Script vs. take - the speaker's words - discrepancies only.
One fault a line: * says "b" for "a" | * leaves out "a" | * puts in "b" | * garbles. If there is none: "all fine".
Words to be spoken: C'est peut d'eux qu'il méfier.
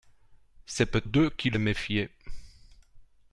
all fine